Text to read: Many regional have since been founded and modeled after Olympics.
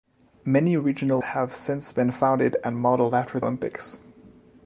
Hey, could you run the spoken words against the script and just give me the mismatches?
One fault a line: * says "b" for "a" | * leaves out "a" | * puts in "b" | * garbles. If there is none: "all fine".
all fine